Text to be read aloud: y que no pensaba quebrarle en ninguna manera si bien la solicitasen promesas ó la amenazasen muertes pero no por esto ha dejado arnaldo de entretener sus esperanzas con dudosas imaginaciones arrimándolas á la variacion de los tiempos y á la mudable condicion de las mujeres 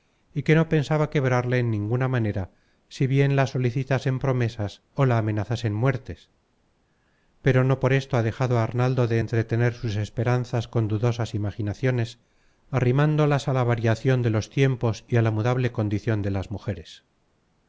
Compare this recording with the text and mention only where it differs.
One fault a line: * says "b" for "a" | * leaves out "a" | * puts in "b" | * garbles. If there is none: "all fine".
all fine